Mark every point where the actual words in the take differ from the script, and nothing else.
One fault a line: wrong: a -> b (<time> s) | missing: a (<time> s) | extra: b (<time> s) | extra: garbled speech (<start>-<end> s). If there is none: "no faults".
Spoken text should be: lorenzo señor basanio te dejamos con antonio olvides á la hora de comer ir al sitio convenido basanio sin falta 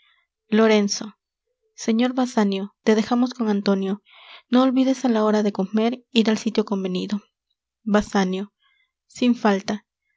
extra: no (4.5 s)